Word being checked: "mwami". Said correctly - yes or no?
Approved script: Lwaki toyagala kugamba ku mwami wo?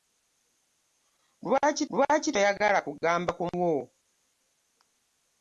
no